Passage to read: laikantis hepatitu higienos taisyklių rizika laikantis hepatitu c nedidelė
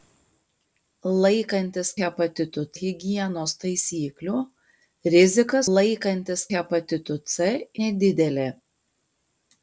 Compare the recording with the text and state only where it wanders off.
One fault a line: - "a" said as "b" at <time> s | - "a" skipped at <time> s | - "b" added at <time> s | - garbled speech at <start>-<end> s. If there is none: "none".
none